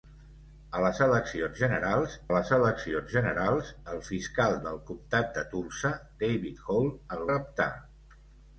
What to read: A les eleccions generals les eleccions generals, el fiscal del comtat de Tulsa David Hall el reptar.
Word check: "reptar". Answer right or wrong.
right